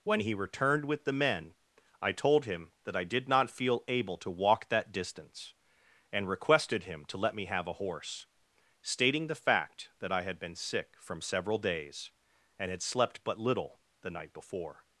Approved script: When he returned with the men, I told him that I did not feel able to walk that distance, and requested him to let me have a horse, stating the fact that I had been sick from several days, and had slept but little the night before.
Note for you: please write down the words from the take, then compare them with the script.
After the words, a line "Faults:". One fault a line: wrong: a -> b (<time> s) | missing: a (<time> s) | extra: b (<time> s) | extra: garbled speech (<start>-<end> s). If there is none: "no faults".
When he returned with the men, I told him that I did not feel able to walk that distance, and requested him to let me have a horse, stating the fact that I had been sick from several days, and had slept but little the night before.
Faults:
no faults